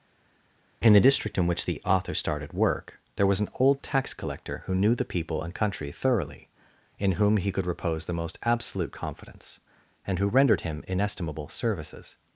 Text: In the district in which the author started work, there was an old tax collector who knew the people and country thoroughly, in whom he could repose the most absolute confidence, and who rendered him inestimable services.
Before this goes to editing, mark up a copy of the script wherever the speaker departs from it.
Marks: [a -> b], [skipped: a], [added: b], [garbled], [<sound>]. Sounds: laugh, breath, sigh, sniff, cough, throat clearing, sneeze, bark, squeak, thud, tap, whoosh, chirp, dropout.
In the district in which the author started work, there was an old tax collector who knew the people and country thoroughly, in whom he could repose the most absolute confidence, and who rendered him inestimable services.